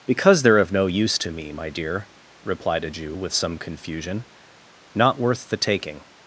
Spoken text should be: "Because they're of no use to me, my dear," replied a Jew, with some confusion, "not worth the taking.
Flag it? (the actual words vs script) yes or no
no